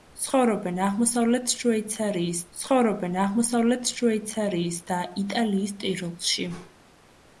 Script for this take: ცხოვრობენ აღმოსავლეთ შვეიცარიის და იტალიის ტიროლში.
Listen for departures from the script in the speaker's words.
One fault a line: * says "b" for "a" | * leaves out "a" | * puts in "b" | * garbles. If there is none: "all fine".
* puts in "ცხოვრობენ აღმოსავლეთ შვეიცარიის"